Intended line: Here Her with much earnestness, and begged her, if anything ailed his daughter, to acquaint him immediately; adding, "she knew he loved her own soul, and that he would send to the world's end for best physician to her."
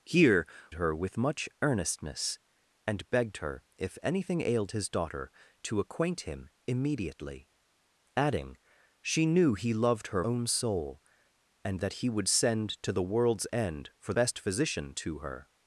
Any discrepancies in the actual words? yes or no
no